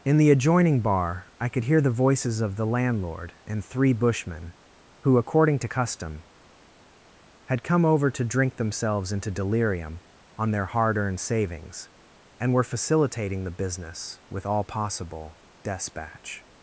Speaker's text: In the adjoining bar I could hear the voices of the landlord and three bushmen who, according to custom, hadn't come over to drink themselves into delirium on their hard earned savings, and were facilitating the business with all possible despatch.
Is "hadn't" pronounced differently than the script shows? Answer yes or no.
yes